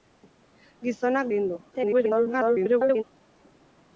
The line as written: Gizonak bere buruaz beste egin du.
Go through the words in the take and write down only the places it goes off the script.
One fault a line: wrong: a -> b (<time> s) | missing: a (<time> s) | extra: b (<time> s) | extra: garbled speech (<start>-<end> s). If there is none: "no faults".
missing: bere buruaz beste (1.3 s)
extra: garbled speech (1.7-3.0 s)